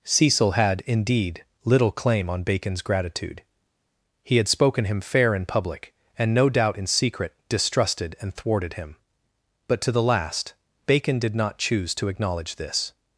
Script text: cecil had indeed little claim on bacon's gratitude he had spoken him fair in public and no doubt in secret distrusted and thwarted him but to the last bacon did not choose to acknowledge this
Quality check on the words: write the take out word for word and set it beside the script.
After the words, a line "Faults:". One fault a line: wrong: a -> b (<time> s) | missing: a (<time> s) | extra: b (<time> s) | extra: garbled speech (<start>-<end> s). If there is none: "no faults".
cecil had indeed little claim on bacon's gratitude he had spoken him fair in public and no doubt in secret distrusted and thwarted him but to the last bacon did not choose to acknowledge this
Faults:
no faults